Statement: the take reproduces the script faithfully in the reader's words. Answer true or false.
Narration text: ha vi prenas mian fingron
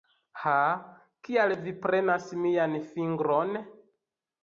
false